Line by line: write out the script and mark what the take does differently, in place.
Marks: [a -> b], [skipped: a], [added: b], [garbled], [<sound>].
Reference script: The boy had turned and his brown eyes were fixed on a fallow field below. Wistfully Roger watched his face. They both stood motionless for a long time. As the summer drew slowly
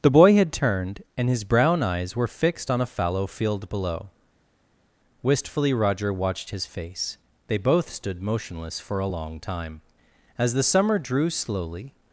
The boy had turned and his brown eyes were fixed on a fallow field below. Wistfully Roger watched his face. They both stood motionless for a long time. As the summer drew slowly